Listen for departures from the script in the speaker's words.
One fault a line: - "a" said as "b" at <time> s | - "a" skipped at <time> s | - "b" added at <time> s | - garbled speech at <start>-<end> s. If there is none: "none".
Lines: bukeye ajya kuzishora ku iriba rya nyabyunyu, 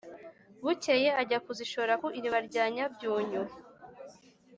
none